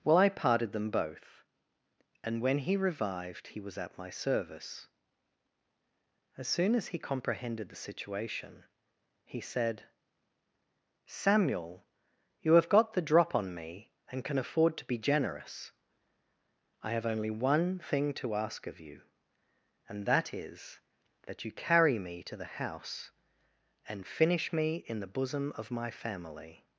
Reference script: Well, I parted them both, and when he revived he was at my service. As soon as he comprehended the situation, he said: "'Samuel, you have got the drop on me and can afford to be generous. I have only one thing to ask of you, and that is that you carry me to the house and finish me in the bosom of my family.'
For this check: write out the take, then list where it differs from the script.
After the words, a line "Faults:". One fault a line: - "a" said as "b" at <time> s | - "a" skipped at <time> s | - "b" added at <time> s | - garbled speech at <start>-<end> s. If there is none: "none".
Well, I parted them both, and when he revived he was at my service. As soon as he comprehended the situation, he said: "'Samuel, you have got the drop on me and can afford to be generous. I have only one thing to ask of you, and that is that you carry me to the house and finish me in the bosom of my family.'
Faults:
none